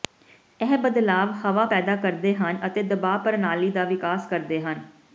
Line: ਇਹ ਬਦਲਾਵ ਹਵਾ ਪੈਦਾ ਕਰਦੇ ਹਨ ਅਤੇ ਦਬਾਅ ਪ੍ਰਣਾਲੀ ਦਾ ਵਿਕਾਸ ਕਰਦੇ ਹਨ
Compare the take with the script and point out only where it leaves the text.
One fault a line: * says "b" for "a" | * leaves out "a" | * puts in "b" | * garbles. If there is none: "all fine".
all fine